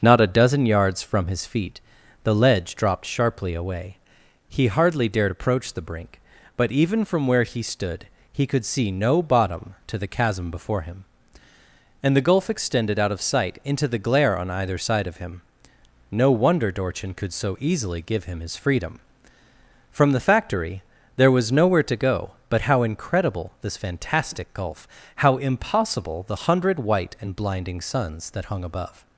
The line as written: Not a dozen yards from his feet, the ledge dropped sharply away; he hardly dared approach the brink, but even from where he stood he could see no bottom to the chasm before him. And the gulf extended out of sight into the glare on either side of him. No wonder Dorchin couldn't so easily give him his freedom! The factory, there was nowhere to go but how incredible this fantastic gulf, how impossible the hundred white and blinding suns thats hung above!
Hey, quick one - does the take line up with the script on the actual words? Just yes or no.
no